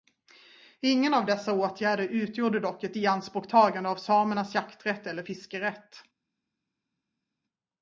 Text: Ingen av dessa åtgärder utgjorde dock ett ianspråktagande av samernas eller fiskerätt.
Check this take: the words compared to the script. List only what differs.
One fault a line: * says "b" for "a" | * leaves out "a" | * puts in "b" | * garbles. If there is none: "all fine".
* puts in "jakträtt"